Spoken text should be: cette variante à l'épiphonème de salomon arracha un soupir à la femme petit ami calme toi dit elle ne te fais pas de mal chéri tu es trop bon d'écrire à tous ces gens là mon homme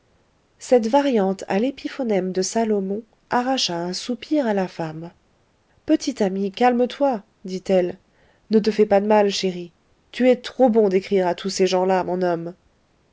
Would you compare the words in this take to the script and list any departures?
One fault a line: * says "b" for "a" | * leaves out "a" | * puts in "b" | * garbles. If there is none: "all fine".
all fine